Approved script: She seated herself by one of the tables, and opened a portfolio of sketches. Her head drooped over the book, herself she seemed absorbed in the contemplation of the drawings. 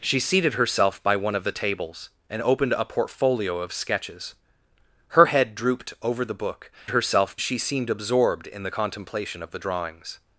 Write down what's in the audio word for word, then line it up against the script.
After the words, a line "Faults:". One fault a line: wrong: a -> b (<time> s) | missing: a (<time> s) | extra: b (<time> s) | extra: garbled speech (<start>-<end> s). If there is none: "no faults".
She seated herself by one of the tables, and opened a portfolio of sketches. Her head drooped over the book, herself she seemed absorbed in the contemplation of the drawings.
Faults:
no faults